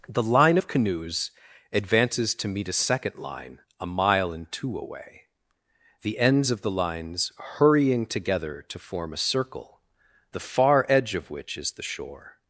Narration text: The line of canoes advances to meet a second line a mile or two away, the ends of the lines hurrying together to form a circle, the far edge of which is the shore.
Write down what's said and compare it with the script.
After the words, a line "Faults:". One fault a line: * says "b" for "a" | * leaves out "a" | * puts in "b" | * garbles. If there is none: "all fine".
The line of canoes advances to meet a second line a mile and two away, the ends of the lines hurrying together to form a circle, the far edge of which is the shore.
Faults:
* says "and" for "or"